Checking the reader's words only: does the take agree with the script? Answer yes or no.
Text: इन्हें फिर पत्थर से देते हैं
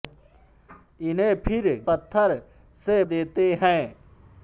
yes